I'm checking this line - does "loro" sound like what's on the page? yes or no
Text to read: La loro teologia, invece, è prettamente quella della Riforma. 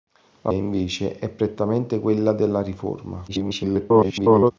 no